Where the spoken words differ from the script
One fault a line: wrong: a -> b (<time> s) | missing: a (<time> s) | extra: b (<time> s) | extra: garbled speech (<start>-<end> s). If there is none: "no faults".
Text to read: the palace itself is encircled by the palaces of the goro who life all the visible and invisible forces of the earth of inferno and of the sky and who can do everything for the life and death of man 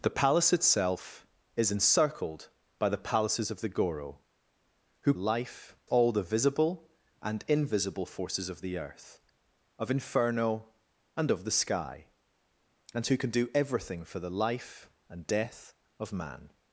no faults